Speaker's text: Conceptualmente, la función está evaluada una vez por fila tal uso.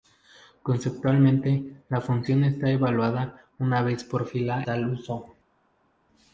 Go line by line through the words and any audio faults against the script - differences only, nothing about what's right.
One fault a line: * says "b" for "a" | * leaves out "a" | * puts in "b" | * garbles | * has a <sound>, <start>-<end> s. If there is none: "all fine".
all fine